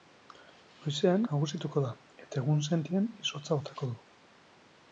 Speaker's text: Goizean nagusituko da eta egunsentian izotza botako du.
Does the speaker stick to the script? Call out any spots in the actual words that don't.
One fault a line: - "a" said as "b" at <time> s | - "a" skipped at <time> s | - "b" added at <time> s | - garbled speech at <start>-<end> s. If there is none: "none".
none